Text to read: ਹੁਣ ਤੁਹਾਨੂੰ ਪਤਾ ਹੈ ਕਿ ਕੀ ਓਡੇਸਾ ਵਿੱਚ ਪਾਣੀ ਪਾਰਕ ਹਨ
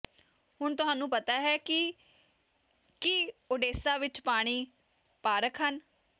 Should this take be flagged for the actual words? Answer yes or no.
no